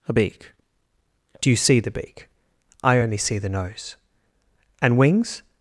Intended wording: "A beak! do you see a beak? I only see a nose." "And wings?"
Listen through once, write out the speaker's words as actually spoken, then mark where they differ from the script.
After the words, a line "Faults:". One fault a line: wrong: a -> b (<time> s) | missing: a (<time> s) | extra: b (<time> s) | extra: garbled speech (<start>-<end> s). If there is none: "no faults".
"A beak! do you see the beak? I only see the nose." "And wings?"
Faults:
wrong: a -> the (1.8 s)
wrong: a -> the (3.4 s)